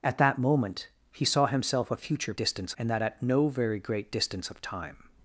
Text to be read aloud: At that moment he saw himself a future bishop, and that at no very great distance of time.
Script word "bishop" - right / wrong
wrong